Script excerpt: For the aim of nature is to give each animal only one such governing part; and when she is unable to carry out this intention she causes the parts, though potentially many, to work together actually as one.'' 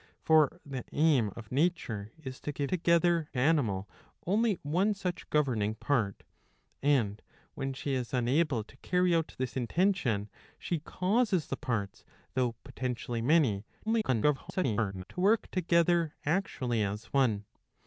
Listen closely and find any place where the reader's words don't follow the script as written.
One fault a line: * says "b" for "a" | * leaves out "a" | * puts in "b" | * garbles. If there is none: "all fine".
* says "together" for "each"
* garbles